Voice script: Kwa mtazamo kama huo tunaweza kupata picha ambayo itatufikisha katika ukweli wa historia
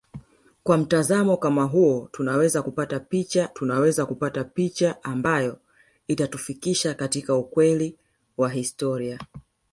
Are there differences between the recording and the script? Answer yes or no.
yes